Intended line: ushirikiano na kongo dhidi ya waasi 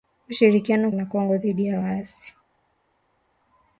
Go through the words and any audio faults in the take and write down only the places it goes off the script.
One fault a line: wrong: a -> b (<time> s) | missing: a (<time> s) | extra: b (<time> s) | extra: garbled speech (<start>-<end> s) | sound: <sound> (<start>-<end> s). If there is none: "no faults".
no faults